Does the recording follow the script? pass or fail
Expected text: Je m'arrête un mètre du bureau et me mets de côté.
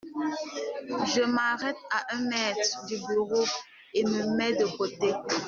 fail